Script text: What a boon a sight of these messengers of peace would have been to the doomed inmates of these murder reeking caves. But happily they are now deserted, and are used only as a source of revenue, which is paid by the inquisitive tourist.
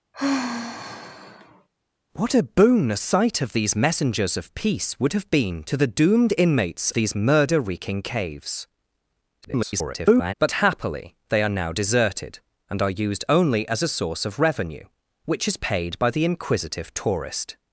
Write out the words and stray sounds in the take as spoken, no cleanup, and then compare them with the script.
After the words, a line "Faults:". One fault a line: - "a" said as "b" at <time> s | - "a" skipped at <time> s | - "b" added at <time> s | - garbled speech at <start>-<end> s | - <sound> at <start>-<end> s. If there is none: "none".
What a boon a sight of these messengers of peace would have been to the doomed inmates these murder reeking caves. [garbled] But happily they are now deserted, and are used only as a source of revenue, which is paid by the inquisitive tourist.
Faults:
- sigh at 0.1-1.7 s
- "of" skipped at 6.9 s
- garbled speech at 9.4-10.3 s